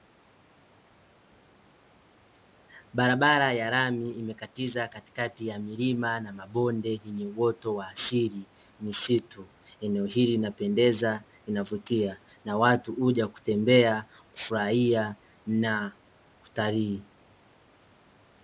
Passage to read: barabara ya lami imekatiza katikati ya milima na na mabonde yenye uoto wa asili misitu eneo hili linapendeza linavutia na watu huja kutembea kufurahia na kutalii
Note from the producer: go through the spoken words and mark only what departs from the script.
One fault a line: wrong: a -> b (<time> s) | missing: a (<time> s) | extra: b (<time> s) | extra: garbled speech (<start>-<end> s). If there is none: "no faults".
missing: na (6.3 s)